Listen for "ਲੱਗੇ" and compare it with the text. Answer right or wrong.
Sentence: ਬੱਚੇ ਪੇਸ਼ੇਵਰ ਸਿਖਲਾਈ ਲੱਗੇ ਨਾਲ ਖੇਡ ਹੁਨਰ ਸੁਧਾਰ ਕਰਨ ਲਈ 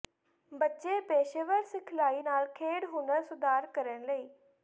wrong